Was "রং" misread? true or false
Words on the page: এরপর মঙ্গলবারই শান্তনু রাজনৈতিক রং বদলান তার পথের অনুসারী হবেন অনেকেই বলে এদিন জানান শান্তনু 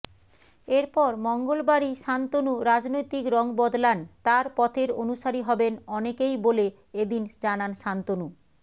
false